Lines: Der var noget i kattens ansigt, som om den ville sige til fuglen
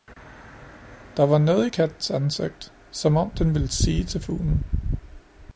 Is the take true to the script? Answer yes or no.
yes